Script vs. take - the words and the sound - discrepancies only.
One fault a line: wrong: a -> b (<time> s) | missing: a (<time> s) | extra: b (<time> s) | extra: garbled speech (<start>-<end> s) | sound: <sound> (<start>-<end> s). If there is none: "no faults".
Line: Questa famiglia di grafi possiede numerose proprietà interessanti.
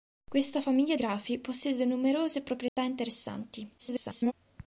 missing: di (1.0 s)
sound: dropout (2.7-2.8 s)
extra: garbled speech (3.8-4.3 s)